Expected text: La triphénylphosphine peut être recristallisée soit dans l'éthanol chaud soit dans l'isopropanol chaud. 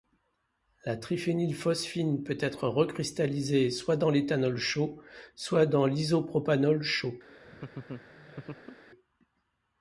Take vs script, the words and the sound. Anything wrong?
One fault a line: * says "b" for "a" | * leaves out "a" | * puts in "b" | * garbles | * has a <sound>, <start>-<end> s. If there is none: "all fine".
* has a laugh, 7.2-8.8 s